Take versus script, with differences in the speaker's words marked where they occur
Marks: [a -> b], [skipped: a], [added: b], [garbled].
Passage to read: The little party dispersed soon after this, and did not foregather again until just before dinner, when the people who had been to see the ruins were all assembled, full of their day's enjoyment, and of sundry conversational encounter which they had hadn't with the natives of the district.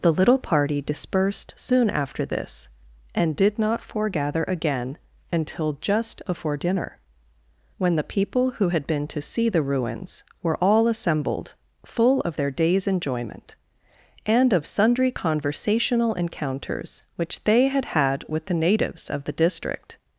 The little party dispersed soon after this, and did not foregather again until just before dinner, when the people who had been to see the ruins were all assembled, full of their day's enjoyment, and of sundry conversational [encounter -> encounters] which they had [hadn't -> had] with the natives of the district.